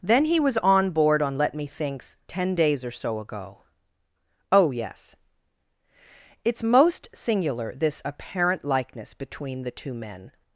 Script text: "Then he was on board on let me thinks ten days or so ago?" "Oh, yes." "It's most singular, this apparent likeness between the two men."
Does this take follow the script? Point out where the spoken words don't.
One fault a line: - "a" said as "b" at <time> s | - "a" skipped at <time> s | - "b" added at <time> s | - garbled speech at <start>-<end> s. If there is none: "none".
none